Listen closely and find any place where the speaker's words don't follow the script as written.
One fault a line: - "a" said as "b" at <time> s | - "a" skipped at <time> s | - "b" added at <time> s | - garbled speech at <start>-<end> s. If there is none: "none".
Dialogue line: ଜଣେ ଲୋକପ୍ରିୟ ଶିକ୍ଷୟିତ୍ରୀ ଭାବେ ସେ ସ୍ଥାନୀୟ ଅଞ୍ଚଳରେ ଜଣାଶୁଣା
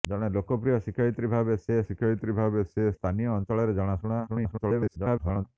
- "ଶିକ୍ଷୟିତ୍ରୀ ଭାବେ ସେ" added at 1.8 s
- garbled speech at 4.3-5.5 s